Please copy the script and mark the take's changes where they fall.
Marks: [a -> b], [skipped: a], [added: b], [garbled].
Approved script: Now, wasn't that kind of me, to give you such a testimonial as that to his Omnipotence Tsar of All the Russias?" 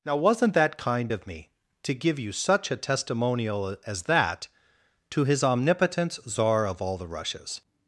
Now, wasn't that kind of me, to give you such a testimonial as that to his Omnipotence Tsar of All the Russias?"